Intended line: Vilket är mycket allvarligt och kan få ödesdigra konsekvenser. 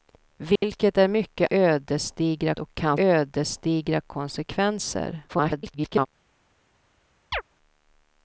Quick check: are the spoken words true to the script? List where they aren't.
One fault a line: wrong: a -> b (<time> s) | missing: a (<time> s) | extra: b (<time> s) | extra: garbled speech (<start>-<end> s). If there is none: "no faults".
wrong: allvarligt -> ödesdigra (1.5 s)
missing: få (3.0 s)
extra: garbled speech (5.3-6.1 s)